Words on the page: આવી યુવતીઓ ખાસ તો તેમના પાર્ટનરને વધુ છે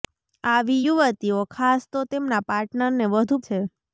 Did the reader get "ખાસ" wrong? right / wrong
right